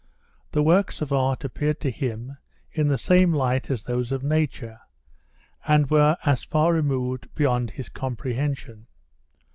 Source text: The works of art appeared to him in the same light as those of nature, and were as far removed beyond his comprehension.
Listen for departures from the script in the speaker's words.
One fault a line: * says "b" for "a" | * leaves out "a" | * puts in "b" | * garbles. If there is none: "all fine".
all fine